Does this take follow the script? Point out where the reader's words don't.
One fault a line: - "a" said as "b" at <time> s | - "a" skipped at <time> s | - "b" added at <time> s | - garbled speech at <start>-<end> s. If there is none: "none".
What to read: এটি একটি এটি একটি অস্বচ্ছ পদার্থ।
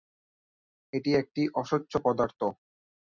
- "এটি একটি" skipped at 1.4 s